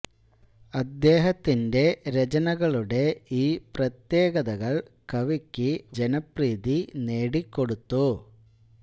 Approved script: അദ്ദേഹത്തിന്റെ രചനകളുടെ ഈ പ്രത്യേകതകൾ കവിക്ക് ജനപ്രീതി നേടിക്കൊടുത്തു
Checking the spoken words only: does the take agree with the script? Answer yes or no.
yes